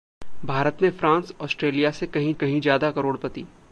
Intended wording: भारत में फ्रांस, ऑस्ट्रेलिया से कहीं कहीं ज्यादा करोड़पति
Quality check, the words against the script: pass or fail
pass